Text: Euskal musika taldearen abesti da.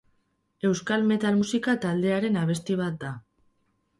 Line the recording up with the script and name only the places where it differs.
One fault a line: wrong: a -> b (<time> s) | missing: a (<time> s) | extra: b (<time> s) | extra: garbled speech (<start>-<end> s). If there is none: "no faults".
extra: metal (1.1 s)
extra: bat (2.8 s)